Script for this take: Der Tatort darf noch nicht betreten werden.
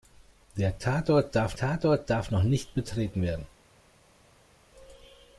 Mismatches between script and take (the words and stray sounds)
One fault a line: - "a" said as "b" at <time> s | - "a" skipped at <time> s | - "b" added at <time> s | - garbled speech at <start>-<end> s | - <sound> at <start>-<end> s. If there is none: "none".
- "Tatort darf" added at 1.6 s